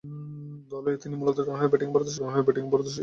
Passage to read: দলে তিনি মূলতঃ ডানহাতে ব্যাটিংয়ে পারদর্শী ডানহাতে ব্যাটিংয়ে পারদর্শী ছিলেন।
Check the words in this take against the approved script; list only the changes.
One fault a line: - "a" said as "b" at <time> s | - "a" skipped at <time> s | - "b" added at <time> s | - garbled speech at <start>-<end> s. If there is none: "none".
none